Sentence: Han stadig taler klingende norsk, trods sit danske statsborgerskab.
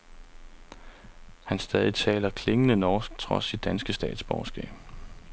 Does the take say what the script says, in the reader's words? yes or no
yes